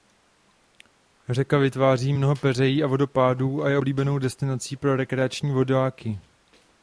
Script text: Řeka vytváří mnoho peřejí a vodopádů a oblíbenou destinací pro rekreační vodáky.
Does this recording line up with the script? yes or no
no